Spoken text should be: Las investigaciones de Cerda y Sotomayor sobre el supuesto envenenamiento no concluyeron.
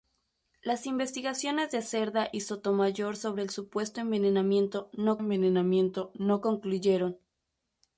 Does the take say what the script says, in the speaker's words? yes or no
no